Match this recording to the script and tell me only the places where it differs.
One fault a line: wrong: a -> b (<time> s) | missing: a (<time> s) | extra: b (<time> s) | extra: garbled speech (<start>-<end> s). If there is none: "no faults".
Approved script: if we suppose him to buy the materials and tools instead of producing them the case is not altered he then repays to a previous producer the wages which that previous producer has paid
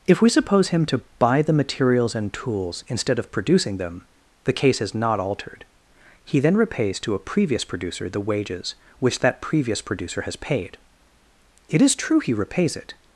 extra: it is true he repays it (11.7 s)